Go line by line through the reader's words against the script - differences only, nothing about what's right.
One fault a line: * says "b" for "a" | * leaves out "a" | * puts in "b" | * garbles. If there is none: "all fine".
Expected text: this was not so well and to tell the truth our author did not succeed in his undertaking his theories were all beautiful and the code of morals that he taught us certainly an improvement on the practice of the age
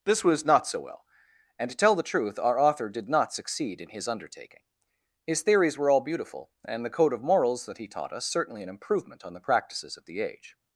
* says "practices" for "practice"